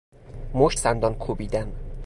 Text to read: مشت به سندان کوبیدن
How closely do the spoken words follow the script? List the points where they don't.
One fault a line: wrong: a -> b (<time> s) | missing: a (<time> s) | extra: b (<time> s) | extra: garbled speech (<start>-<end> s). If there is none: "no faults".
missing: به (0.8 s)